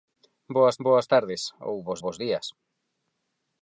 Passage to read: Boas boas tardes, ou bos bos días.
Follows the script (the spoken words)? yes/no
yes